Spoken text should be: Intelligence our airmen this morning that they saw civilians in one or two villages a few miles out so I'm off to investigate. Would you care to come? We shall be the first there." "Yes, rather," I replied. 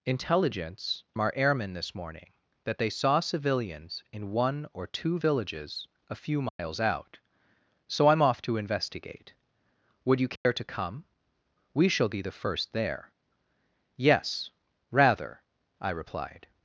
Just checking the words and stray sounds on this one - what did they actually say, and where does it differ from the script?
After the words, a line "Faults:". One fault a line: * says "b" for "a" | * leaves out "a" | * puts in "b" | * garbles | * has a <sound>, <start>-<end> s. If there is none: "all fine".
Intelligence our airmen this morning that they saw civilians in one or two villages a few miles out so I'm off to investigate. Would you care to come? We shall be the first there." "Yes, rather," I replied.
Faults:
* has a dropout, 6.5-6.6 s
* has a dropout, 10.4-10.5 s